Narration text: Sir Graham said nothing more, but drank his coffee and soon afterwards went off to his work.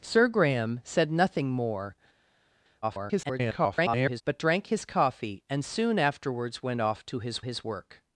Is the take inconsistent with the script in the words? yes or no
yes